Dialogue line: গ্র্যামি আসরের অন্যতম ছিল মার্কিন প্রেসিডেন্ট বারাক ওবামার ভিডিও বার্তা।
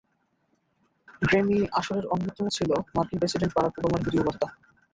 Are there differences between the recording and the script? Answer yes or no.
no